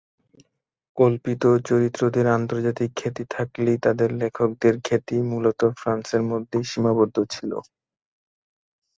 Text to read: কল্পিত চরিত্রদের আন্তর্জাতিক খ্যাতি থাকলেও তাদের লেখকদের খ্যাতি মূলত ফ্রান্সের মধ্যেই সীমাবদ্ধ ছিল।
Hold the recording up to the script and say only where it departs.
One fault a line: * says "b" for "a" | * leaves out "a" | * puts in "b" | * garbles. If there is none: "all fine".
all fine